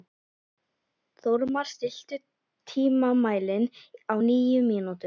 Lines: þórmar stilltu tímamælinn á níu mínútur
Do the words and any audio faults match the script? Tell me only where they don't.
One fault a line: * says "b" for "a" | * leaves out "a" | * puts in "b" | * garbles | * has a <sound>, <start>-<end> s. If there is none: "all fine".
all fine